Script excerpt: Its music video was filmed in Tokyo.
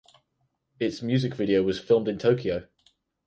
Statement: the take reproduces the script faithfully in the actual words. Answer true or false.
true